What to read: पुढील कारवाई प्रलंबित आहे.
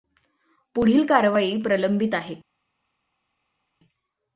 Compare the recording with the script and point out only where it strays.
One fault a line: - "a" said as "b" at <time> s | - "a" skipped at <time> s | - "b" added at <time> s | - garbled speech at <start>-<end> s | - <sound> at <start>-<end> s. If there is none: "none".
none